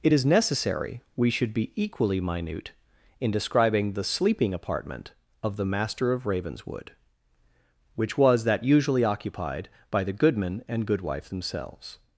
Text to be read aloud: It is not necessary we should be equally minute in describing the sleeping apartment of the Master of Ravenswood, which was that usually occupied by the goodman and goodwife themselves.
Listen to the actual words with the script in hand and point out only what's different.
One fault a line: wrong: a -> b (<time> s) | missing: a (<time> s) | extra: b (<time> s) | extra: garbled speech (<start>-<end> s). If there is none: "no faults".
missing: not (0.2 s)